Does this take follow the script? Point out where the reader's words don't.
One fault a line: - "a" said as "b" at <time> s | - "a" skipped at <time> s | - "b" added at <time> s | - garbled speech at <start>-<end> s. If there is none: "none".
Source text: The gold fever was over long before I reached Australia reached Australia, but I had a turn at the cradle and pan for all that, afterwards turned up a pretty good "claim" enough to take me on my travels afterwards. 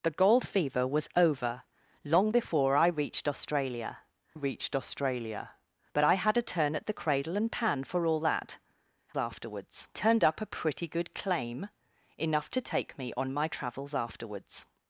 none